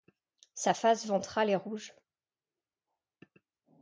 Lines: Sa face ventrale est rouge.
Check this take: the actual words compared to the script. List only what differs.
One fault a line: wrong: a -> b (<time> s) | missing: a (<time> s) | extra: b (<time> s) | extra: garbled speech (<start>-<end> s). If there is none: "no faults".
no faults